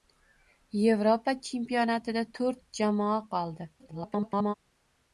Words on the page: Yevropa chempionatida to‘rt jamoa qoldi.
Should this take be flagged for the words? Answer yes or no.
yes